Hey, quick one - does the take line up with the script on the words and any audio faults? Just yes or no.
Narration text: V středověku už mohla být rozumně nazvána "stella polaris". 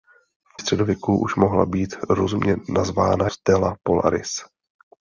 yes